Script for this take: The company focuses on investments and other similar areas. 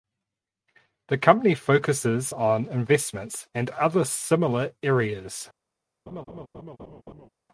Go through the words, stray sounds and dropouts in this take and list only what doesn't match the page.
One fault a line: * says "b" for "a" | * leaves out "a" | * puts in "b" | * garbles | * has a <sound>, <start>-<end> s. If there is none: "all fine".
* has a laugh, 6.1-7.3 s